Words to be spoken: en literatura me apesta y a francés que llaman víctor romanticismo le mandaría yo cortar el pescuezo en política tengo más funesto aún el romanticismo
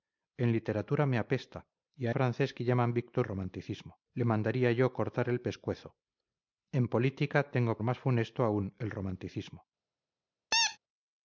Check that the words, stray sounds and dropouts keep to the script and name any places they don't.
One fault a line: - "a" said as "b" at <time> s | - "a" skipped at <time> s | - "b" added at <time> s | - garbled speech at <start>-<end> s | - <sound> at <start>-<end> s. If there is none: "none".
- squeak at 10.5-10.8 s